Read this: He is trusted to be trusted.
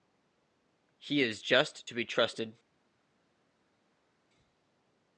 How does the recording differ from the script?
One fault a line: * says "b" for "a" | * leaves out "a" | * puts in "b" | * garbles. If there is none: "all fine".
* says "just" for "trusted"